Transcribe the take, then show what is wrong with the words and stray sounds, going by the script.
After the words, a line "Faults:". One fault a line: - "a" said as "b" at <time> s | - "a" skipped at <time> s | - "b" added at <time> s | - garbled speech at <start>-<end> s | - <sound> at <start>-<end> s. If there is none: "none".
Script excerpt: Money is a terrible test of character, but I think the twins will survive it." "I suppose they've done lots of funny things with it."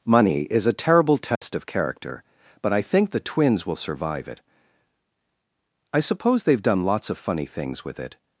Money is a terrible test of character, but I think the twins will survive it." "I suppose they've done lots of funny things with it."
Faults:
- dropout at 1.4-1.4 s